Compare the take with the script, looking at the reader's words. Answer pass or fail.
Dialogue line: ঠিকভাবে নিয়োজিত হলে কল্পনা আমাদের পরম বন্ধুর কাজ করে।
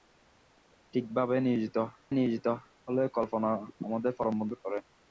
fail